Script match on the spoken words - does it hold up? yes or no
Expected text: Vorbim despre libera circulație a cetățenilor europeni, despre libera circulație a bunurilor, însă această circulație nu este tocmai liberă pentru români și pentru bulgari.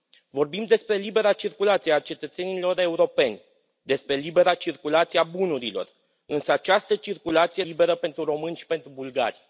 no